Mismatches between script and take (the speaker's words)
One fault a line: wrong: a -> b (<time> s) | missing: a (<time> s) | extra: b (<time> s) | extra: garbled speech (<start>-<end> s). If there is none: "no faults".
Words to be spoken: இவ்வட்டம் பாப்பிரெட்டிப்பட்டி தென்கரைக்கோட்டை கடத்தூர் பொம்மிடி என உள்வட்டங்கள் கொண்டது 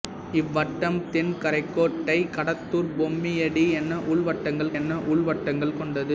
missing: பாப்பிரெட்டிப்பட்டி (1.0 s)
extra: என உள்வட்டங்கள் (4.8 s)